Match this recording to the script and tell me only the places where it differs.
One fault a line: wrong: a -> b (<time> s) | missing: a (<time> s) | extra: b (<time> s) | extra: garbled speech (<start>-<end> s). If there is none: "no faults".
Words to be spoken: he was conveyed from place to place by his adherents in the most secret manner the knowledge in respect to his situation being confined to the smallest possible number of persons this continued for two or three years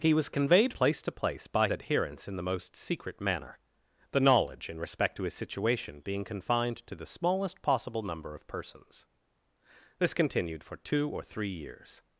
missing: from (0.7 s)
missing: his (1.7 s)